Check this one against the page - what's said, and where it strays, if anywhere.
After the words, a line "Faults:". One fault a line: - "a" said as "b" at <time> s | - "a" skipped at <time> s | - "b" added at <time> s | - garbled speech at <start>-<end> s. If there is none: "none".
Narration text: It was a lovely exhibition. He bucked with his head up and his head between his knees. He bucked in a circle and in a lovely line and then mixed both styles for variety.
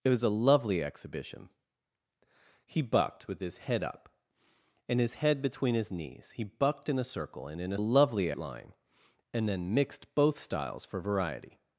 It was a lovely exhibition. He bucked with his head up and his head between his knees. He bucked in a circle and in a lovely line and then mixed both styles for variety.
Faults:
none